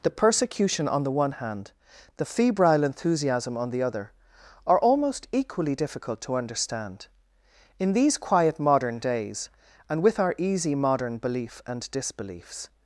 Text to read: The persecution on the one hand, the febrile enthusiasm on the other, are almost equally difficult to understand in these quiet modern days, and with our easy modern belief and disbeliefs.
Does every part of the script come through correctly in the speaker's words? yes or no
yes